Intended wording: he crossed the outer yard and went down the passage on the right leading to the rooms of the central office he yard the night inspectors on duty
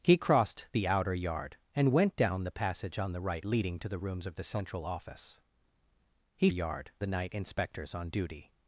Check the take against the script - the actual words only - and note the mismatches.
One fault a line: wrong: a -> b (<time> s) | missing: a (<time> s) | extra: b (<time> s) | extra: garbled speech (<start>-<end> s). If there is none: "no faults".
no faults